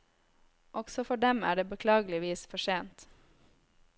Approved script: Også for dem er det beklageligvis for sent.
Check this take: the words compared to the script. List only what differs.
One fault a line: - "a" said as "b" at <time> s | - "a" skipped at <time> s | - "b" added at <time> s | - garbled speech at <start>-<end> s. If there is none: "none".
none